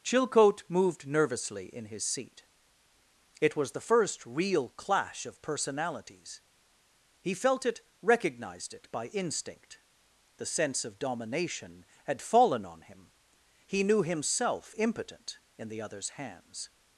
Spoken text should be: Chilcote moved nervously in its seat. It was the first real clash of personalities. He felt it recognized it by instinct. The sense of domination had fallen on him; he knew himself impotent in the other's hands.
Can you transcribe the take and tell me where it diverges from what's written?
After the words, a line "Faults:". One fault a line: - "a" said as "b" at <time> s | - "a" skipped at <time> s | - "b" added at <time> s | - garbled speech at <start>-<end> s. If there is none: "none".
Chilcote moved nervously in his seat. It was the first real clash of personalities. He felt it recognized it by instinct. The sense of domination had fallen on him; he knew himself impotent in the other's hands.
Faults:
- "its" said as "his" at 1.9 s